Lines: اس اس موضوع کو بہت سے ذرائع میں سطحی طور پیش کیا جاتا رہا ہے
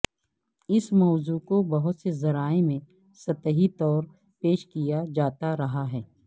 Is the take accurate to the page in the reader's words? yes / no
no